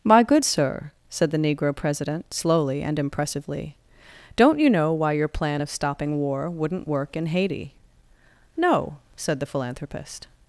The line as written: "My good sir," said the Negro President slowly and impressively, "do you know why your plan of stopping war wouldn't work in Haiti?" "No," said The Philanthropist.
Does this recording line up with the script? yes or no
no